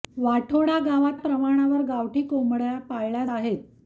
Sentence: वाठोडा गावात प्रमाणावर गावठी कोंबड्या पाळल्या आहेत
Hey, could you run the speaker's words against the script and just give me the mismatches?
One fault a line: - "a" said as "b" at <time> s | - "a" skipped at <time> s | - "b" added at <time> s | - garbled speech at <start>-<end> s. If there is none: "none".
none